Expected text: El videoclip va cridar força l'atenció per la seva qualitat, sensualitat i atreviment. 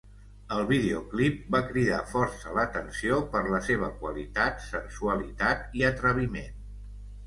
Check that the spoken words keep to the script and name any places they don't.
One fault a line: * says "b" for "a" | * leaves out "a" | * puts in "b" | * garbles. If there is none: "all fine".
all fine